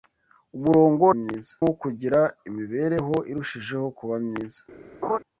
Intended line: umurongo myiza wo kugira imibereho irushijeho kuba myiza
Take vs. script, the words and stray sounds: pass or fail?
fail